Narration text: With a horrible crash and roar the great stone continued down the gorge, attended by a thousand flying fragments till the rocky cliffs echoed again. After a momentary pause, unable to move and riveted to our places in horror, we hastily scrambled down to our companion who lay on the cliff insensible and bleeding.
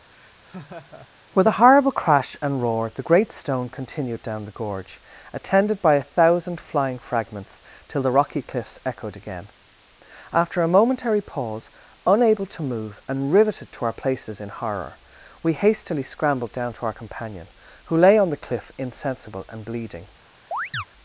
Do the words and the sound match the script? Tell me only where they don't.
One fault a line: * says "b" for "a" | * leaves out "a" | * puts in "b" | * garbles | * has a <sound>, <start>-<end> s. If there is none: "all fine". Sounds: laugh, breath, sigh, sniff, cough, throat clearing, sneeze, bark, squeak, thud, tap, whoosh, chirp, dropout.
* has a laugh, 0.1-1.1 s
* has a chirp, 20.5-20.8 s